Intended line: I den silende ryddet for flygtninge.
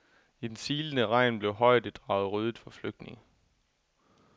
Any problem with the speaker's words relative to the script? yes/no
yes